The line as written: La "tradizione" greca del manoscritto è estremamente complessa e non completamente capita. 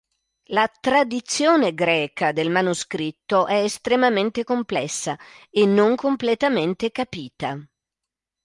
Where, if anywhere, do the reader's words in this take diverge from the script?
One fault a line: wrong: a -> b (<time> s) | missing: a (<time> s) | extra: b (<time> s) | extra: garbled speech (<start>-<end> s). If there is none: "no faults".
no faults